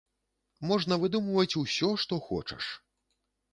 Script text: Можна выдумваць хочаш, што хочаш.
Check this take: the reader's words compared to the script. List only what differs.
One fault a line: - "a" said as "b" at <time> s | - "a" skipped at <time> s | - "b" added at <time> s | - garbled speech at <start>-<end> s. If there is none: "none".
- "хочаш" said as "усё" at 1.6 s